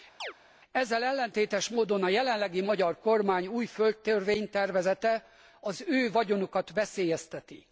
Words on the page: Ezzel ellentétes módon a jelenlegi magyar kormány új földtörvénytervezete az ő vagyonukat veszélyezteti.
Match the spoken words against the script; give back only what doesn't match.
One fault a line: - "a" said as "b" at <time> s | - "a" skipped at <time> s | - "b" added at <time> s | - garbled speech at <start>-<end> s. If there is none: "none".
none